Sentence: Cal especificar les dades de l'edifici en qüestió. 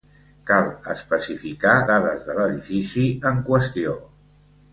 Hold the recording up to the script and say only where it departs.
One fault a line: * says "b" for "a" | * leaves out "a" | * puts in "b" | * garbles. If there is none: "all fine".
* leaves out "les"